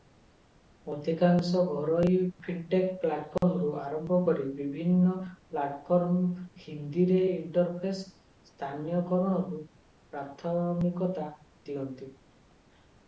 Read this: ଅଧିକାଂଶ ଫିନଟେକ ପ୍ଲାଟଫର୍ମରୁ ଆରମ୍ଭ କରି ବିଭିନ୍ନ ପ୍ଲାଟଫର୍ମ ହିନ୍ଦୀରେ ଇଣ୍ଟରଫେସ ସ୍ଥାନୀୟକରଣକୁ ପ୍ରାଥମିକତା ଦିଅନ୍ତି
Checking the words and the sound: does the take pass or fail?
fail